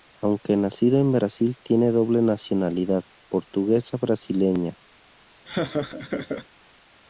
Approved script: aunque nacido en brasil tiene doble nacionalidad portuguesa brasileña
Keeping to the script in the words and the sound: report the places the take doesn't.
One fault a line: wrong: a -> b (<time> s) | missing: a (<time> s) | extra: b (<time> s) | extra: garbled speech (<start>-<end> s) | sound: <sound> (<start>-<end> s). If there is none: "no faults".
sound: laugh (5.4-6.5 s)